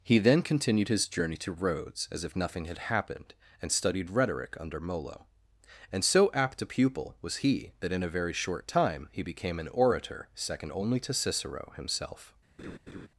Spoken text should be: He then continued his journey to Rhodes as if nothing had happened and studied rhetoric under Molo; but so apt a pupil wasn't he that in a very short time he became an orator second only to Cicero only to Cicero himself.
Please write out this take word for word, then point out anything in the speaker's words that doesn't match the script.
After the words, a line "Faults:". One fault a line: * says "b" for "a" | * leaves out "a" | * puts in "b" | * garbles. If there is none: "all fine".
He then continued his journey to Rhodes as if nothing had happened and studied rhetoric under Molo; and so apt a pupil was he that in a very short time he became an orator second only to Cicero himself.
Faults:
* says "and" for "but"
* says "was" for "wasn't"
* leaves out "only to Cicero"